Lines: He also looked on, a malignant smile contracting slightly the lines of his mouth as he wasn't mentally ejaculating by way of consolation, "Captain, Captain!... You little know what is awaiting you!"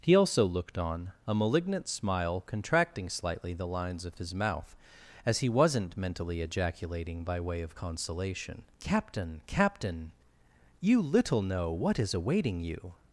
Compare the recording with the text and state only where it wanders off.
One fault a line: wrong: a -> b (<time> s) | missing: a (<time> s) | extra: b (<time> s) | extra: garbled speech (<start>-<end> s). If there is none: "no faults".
no faults